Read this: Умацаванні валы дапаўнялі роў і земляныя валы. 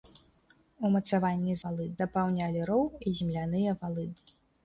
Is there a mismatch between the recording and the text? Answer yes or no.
no